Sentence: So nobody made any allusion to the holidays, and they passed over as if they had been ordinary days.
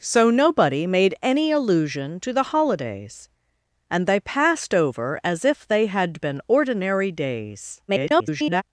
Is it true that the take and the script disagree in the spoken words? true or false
true